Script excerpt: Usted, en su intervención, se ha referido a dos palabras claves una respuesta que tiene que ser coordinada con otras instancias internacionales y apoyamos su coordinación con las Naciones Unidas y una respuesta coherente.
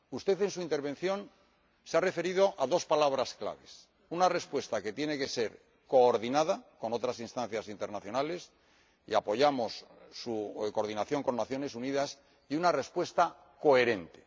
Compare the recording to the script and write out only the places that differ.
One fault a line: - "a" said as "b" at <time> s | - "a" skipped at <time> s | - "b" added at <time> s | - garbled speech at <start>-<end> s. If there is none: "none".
none